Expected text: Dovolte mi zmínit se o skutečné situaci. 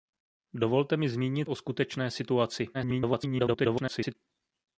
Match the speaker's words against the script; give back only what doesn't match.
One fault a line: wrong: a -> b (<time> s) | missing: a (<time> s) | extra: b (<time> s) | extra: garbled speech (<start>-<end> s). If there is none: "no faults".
missing: se (1.5 s)
extra: garbled speech (2.7-4.1 s)